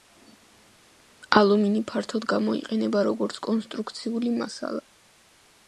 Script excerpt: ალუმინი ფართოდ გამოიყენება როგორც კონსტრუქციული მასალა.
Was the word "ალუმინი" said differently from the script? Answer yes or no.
no